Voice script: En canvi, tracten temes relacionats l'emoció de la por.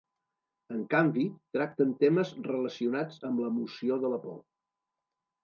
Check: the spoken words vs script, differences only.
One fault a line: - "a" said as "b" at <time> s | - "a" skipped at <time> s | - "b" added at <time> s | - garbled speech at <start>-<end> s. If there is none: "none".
- "amb" added at 3.3 s